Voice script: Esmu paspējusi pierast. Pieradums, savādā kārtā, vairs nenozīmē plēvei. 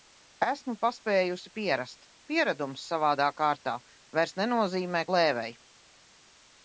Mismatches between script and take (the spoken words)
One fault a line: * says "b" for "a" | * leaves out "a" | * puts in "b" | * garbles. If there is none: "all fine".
all fine